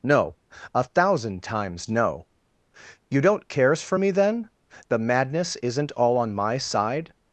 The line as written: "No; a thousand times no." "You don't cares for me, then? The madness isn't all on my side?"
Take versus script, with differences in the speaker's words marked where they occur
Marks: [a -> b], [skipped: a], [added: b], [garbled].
"No; a thousand times no." "You don't cares for me, then? The madness isn't all on my side?"